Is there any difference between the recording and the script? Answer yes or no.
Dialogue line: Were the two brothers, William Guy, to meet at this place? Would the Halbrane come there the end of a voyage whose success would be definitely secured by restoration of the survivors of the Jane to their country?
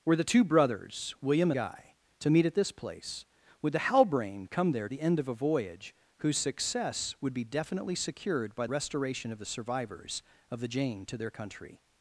no